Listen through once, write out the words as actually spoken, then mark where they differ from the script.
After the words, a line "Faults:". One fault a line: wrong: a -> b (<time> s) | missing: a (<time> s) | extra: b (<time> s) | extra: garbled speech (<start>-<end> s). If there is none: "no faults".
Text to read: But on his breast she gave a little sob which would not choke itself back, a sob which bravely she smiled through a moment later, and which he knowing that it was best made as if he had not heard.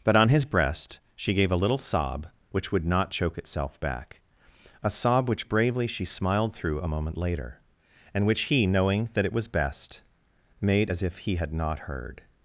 But on his breast she gave a little sob which would not choke itself back, a sob which bravely she smiled through a moment later, and which he knowing that it was best made as if he had not heard.
Faults:
no faults